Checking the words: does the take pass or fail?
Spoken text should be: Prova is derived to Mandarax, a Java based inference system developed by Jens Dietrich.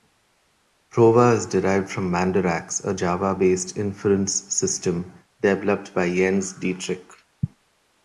fail